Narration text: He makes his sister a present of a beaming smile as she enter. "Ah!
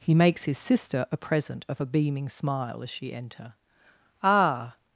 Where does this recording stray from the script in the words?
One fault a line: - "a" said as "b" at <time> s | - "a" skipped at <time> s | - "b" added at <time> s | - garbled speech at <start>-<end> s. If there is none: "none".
none